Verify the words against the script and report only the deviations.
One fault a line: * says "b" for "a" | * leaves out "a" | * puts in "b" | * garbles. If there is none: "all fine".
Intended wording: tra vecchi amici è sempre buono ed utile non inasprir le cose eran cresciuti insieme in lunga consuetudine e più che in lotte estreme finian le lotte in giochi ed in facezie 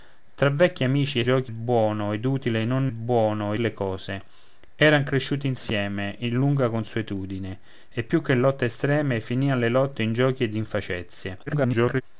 * says "giochi" for "sempre"
* says "buono" for "inasprir"
* garbles